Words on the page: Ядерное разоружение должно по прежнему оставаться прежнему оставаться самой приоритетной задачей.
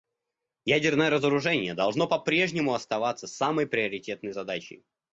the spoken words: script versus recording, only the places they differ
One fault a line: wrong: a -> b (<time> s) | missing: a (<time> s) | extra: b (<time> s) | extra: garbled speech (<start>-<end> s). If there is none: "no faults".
missing: прежнему оставаться (3.3 s)